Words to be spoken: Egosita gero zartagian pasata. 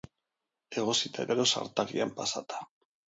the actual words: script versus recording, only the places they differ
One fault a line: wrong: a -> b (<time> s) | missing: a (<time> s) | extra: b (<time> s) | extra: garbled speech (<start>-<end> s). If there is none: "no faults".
no faults